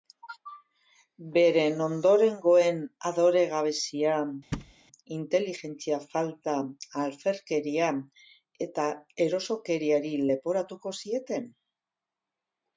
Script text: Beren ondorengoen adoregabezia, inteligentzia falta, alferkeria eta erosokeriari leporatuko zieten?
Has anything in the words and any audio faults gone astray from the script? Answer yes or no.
yes